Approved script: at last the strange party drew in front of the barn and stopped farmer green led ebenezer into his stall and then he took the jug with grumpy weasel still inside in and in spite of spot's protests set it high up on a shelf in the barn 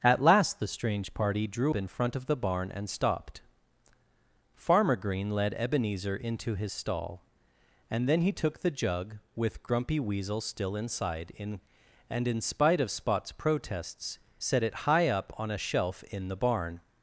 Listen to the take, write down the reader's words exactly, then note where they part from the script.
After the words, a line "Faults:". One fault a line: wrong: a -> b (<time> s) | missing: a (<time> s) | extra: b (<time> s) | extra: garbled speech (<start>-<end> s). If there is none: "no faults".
at last the strange party drew in front of the barn and stopped farmer green led ebenezer into his stall and then he took the jug with grumpy weasel still inside in and in spite of spot's protests set it high up on a shelf in the barn
Faults:
no faults